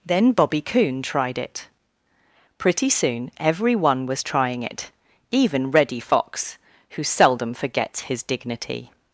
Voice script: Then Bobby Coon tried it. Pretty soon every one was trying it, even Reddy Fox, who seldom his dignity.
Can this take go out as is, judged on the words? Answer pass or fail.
fail